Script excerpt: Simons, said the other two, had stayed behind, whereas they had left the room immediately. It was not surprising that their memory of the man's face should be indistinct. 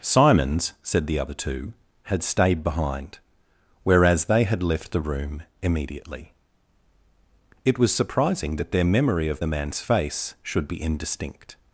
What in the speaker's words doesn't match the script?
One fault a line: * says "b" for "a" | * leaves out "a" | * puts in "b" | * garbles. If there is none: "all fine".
* leaves out "not"